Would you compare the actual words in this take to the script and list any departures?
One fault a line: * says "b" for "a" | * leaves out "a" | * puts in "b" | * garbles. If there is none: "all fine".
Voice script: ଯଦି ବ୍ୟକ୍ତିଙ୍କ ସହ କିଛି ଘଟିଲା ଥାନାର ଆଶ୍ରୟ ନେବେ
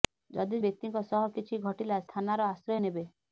all fine